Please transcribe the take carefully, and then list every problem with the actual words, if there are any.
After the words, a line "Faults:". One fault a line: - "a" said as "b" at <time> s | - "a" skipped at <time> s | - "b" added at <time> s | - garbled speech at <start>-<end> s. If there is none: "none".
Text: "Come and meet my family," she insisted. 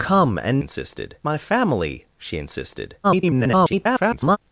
"Come and insisted my family," she insisted. [garbled]
Faults:
- "meet" said as "insisted" at 0.6 s
- garbled speech at 3.0-4.4 s